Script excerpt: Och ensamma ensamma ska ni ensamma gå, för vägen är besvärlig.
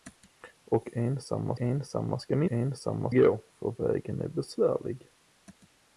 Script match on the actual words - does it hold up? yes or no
yes